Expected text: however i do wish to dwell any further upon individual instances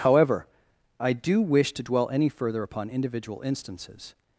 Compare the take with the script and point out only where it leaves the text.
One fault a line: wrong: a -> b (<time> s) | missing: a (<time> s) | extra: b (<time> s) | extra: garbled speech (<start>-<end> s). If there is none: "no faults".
no faults